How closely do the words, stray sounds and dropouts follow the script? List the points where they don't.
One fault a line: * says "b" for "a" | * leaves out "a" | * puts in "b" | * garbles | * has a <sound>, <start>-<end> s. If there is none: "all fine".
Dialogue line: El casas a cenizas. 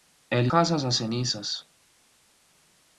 all fine